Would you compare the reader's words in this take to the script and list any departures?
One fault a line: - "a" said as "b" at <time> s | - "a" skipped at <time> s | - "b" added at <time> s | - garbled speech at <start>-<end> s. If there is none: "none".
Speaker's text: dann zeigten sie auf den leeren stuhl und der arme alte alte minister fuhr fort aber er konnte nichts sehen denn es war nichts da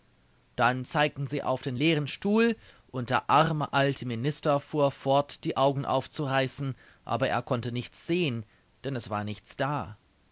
- "alte" skipped at 4.0 s
- "die augen aufzureißen" added at 5.4 s